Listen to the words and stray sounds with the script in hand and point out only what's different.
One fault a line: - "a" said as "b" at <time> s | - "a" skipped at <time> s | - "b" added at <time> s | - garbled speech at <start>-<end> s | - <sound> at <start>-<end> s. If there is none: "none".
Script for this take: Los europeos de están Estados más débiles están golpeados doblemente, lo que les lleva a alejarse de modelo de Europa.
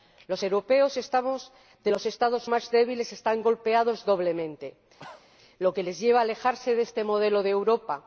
- "están" said as "los" at 1.9 s
- cough at 5.0-5.3 s
- "este" added at 6.8 s